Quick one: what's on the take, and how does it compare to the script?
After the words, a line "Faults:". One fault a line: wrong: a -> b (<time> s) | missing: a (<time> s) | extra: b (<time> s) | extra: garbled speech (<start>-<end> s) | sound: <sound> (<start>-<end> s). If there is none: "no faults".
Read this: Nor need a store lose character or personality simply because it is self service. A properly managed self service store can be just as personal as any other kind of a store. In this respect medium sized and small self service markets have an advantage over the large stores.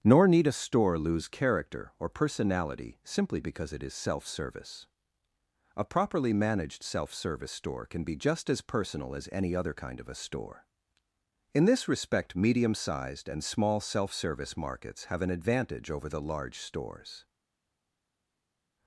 Nor need a store lose character or personality simply because it is self service. A properly managed self service store can be just as personal as any other kind of a store. In this respect medium sized and small self service markets have an advantage over the large stores.
Faults:
no faults